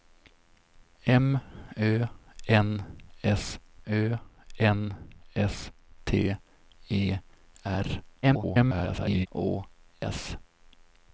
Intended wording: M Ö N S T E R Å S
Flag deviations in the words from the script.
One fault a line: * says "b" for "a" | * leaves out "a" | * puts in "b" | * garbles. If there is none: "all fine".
* puts in "Ö N S"
* garbles